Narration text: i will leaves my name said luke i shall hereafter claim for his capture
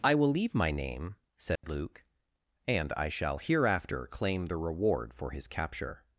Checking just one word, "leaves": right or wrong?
wrong